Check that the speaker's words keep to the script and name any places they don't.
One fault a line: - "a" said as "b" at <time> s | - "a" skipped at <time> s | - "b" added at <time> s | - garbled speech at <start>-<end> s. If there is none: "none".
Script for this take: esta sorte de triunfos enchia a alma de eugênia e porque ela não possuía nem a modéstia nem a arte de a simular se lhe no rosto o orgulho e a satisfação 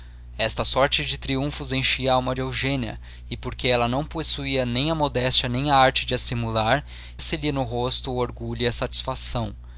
none